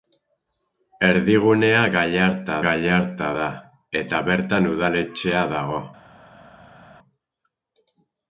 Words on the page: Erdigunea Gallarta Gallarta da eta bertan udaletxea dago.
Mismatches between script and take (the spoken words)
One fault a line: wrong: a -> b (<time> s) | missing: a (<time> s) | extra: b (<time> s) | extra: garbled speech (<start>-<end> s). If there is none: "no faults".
no faults